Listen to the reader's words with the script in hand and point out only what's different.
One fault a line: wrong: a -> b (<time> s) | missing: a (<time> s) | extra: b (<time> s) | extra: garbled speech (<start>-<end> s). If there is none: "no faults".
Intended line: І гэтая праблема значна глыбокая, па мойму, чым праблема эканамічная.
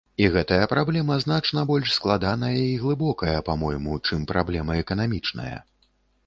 extra: больш складаная і (1.7 s)